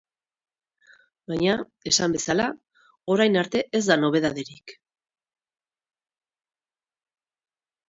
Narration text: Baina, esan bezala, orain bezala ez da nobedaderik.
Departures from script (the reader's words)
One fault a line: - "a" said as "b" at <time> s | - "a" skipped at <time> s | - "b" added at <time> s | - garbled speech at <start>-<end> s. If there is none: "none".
- "bezala" said as "arte" at 3.4 s